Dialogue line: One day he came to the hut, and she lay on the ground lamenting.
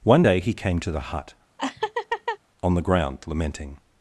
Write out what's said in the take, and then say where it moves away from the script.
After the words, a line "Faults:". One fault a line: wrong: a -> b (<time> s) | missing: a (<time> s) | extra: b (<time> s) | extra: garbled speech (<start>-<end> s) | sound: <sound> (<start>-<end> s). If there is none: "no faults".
One day he came to the hut, on the ground lamenting.
Faults:
missing: and she lay (1.3 s)
sound: laugh (1.6-2.4 s)